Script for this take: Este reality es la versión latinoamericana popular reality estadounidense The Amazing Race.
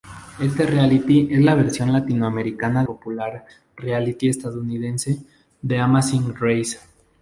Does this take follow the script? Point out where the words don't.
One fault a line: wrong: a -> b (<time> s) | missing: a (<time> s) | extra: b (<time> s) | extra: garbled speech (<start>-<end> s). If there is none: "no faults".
no faults